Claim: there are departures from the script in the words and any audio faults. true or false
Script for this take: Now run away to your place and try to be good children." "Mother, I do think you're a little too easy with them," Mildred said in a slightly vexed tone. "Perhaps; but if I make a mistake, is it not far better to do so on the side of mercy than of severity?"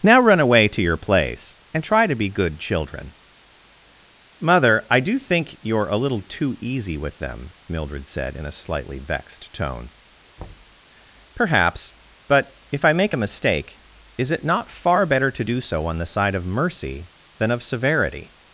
true